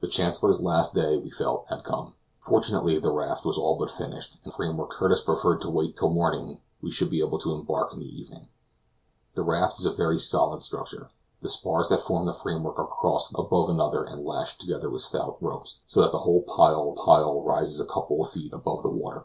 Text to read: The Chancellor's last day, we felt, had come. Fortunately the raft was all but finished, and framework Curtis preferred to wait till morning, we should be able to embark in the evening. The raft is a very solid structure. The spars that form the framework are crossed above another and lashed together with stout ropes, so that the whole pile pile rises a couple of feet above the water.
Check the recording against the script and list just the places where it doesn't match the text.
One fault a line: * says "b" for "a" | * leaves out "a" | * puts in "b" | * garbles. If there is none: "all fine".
all fine